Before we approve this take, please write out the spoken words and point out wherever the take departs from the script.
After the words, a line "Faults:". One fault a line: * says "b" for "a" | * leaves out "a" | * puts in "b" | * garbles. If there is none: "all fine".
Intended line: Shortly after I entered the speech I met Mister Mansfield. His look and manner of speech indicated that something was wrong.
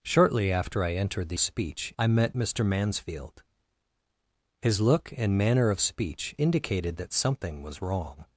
Shortly after I entered the speech I met Mister Mansfield. His look and manner of speech indicated that something was wrong.
Faults:
all fine